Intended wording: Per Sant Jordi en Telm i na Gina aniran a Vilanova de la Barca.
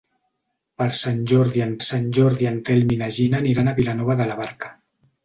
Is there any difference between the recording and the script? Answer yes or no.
yes